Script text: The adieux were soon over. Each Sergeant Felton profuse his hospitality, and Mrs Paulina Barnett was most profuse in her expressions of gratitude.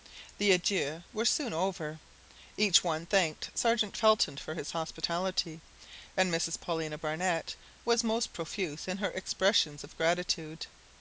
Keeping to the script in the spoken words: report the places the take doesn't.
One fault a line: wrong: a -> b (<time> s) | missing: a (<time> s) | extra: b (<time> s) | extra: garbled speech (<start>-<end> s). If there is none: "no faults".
extra: one thanked (2.8 s)
wrong: profuse -> for (4.4 s)